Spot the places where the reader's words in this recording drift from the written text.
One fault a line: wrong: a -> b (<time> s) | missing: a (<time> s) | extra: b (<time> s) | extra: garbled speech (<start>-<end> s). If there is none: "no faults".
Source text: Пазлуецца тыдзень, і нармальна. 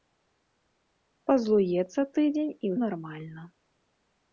no faults